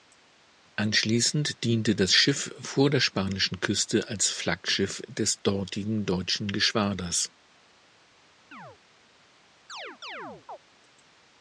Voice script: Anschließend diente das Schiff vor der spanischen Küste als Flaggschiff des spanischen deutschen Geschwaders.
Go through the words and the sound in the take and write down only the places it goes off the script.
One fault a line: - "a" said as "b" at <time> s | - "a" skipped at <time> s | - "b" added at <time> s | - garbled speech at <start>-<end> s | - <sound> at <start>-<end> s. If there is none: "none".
- "spanischen" said as "dortigen" at 5.4 s
- chirp at 8.5-8.8 s
- chirp at 9.7-10.6 s